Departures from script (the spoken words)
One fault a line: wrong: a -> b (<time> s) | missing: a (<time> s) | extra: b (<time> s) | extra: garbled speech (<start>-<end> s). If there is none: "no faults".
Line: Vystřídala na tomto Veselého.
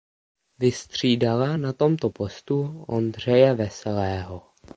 extra: postu Ondřeje (2.1 s)